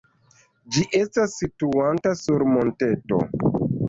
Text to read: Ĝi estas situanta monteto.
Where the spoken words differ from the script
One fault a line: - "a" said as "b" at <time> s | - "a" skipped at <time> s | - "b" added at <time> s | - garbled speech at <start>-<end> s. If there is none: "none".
- "sur" added at 2.2 s